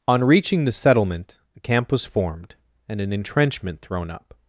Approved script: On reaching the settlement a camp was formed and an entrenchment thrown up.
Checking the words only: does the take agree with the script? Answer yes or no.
yes